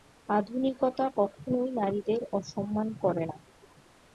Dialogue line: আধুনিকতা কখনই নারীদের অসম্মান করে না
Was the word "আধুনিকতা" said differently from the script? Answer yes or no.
no